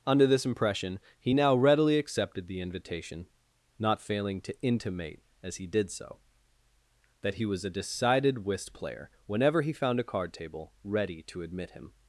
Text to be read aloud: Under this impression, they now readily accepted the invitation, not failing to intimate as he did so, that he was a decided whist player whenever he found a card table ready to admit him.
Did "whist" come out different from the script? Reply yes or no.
no